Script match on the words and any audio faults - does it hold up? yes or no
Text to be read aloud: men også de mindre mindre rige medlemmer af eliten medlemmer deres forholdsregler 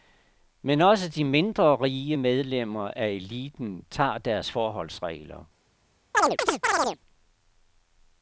no